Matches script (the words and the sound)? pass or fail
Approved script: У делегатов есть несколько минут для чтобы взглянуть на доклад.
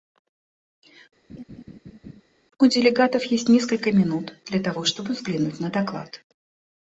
fail